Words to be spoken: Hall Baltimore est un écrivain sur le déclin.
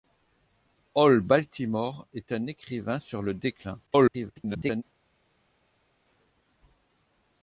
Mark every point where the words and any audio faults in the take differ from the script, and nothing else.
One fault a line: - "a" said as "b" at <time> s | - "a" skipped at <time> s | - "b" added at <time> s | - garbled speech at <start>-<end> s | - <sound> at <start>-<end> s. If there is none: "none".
- garbled speech at 3.9-4.8 s